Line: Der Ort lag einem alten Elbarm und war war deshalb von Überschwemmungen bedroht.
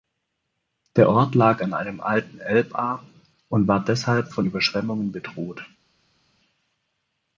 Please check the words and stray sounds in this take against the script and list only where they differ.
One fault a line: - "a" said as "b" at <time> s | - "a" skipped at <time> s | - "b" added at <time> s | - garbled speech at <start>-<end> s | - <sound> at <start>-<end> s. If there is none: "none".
- "an" added at 1.6 s
- "war" skipped at 3.8 s